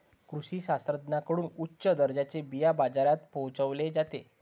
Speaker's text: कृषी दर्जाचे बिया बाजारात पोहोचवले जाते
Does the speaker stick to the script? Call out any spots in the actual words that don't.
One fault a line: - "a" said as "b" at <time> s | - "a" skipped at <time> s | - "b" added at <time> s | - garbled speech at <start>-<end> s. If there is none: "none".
- "शास्त्रज्ञांकडून उच्च" added at 0.6 s